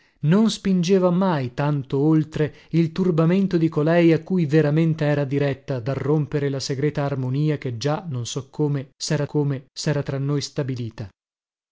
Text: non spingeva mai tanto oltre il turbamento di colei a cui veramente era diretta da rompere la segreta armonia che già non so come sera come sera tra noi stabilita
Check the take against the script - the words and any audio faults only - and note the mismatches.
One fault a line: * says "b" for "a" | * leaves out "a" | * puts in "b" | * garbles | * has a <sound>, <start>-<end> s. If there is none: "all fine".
all fine